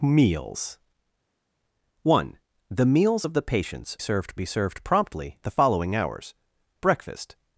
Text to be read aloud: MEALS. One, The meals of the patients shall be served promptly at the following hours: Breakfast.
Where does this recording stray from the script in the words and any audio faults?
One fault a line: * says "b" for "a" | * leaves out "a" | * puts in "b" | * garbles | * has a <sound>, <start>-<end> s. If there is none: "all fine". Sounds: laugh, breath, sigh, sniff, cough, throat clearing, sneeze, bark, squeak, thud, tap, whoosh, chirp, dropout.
* says "served" for "shall"
* leaves out "at"